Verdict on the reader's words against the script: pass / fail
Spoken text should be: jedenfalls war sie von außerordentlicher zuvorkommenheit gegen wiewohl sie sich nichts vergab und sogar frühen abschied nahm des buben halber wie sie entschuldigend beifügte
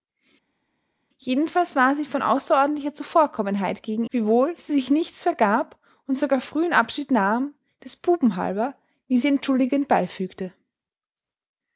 pass